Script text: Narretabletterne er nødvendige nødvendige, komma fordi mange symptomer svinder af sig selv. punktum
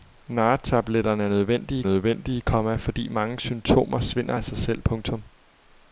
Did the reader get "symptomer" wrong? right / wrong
right